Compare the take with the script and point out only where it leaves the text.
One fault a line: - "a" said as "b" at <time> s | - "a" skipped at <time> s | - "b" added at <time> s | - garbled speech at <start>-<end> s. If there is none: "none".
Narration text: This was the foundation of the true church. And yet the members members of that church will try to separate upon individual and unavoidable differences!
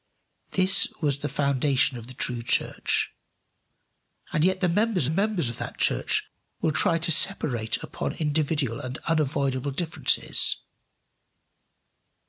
none